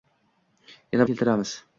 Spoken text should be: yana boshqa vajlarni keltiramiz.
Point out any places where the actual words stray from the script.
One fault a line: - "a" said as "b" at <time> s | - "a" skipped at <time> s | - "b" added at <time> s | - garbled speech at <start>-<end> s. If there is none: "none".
- "boshqa vajlarni" skipped at 1.1 s